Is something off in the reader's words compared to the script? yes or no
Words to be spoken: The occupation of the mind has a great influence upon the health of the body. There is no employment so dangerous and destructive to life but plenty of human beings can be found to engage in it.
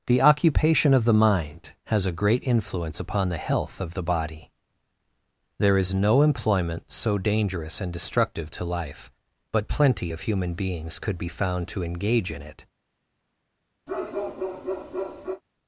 yes